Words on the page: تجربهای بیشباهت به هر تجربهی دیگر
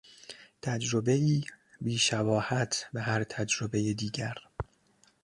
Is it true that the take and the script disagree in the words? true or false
false